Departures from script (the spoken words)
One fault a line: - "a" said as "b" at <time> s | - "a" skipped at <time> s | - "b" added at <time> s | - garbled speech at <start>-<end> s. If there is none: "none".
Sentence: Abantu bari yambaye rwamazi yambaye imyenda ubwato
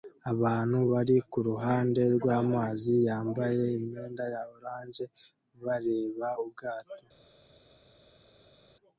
- "yambaye" said as "kuruhande" at 1.3 s
- "ya orange bareba" added at 4.3 s